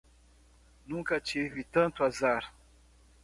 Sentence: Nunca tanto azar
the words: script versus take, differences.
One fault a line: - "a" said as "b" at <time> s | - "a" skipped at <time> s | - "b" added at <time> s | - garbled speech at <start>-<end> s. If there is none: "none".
- "tive" added at 1.2 s